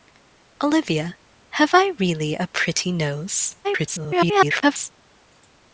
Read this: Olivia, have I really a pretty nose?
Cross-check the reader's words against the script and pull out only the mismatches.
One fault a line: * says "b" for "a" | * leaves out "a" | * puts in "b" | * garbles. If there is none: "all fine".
* garbles